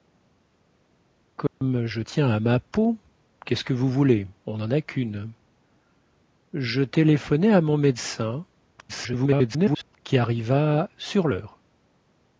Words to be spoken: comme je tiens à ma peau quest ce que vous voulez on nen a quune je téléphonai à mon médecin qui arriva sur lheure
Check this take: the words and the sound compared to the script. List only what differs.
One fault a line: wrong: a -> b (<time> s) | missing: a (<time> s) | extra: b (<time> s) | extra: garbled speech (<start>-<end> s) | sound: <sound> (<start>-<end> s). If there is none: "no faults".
sound: dropout (1.5-1.6 s)
extra: garbled speech (8.8-10.0 s)